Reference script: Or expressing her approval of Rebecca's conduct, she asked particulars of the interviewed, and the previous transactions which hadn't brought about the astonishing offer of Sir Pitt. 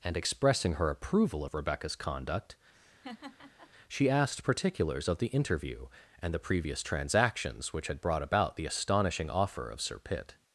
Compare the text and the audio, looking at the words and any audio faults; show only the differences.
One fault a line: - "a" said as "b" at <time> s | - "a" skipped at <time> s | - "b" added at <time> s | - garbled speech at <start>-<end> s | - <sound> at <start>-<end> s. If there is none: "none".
- "Or" said as "And" at 0.0 s
- laugh at 2.7-3.7 s
- "interviewed" said as "interview" at 5.3 s
- "hadn't" said as "had" at 7.9 s